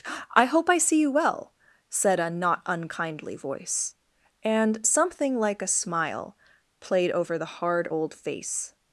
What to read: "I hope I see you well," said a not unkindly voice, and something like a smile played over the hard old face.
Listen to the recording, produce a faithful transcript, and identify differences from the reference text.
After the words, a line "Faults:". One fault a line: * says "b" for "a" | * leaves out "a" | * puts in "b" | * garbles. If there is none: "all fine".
"I hope I see you well," said a not unkindly voice, and something like a smile played over the hard old face.
Faults:
all fine